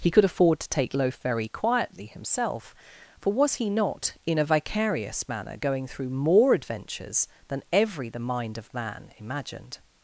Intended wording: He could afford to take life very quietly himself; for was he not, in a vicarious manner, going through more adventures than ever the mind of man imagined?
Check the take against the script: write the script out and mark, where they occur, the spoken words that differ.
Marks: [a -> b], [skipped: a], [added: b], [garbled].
He could afford to take [life -> loaf] very quietly himself; for was he not, in a vicarious manner, going through more adventures than [ever -> every] the mind of man imagined?